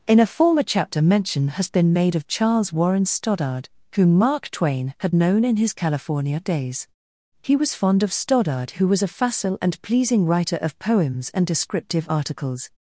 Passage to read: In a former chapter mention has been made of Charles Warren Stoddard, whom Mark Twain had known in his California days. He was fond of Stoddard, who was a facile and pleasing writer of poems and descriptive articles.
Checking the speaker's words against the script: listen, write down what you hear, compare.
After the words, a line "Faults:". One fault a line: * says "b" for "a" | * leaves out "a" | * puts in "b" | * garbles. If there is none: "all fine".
In a former chapter mention has been made of Charles Warren Stoddard, whom Mark Twain had known in his California days. He was fond of Stoddard, who was a facile and pleasing writer of poems and descriptive articles.
Faults:
all fine